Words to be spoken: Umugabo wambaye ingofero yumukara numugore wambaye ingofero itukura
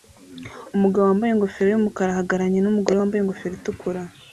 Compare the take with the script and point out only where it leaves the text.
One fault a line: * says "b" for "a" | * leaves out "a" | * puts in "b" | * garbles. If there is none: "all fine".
* puts in "ahagararanye"